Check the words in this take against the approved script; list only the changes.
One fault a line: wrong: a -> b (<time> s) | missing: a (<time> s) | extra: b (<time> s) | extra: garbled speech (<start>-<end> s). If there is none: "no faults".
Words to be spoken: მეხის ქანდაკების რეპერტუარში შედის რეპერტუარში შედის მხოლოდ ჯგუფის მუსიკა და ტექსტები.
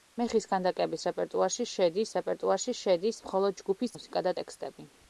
no faults